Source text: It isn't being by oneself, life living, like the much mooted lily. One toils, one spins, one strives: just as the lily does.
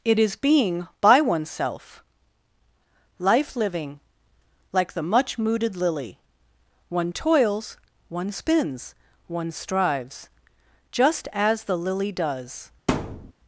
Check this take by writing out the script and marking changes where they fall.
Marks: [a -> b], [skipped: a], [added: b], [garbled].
It [isn't -> is] being by oneself, life living, like the much mooted lily. One toils, one spins, one strives: just as the lily does.